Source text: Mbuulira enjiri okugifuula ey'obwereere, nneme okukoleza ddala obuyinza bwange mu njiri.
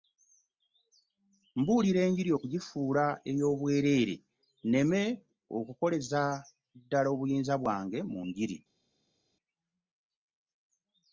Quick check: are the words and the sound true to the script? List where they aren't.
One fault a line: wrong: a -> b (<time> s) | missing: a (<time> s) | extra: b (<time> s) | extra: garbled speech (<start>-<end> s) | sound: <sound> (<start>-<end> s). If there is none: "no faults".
no faults